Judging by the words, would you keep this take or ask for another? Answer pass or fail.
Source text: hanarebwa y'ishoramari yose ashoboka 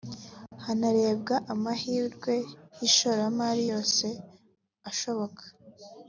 fail